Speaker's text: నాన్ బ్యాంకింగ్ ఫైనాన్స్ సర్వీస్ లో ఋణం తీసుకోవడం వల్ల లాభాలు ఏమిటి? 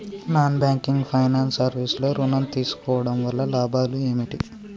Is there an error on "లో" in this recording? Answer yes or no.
no